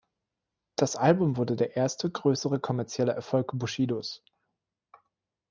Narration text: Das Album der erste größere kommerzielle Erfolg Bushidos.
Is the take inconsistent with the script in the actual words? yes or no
yes